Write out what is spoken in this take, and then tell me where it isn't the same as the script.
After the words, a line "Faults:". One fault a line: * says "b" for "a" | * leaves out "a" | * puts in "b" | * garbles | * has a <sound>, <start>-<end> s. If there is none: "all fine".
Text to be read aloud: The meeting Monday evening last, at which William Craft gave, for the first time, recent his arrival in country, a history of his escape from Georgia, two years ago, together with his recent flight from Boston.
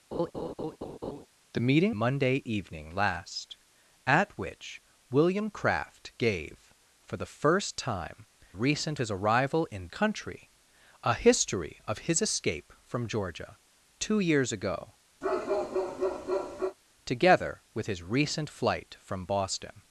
The meeting Monday evening last, at which William Craft gave, for the first time, recent his arrival in country, a history of his escape from Georgia, two years ago, together with his recent flight from Boston.
Faults:
* has a laugh, 0.1-1.3 s
* has a bark, 15.2-16.8 s